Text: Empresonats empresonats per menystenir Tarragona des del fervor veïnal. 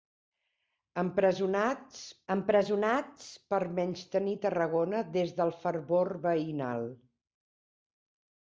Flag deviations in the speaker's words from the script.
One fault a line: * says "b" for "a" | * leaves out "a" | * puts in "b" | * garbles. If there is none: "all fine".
all fine